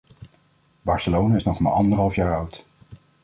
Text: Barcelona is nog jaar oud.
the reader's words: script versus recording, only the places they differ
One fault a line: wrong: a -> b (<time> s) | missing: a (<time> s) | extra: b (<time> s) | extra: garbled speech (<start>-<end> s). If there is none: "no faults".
extra: maar anderhalf (1.6 s)